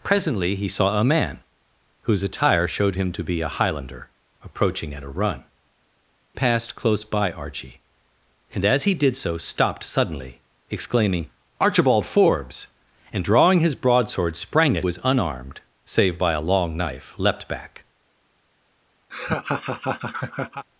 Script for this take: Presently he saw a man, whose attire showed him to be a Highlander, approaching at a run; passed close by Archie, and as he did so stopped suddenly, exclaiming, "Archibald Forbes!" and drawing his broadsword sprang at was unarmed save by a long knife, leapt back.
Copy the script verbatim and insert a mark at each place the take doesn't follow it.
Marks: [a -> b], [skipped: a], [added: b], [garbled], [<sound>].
Presently he saw a man, whose attire showed him to be a Highlander, approaching at a run; passed close by Archie, and as he did so stopped suddenly, exclaiming, "Archibald Forbes!" and drawing his broadsword sprang at was unarmed save by a long knife, leapt back. [laugh]